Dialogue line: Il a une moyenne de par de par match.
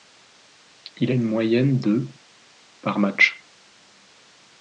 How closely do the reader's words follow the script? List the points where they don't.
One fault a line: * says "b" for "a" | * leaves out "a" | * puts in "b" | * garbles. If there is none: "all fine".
* leaves out "de par"